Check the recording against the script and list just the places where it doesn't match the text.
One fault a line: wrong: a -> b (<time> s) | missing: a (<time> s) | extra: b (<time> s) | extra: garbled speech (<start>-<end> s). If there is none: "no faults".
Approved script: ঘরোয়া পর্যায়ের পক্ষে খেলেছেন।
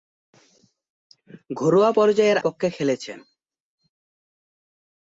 no faults